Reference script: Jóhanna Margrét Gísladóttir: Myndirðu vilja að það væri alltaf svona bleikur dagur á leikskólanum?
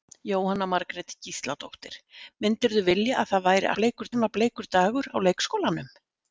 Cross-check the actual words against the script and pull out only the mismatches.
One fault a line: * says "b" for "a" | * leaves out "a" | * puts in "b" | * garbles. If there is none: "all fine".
* says "bleikur" for "alltaf"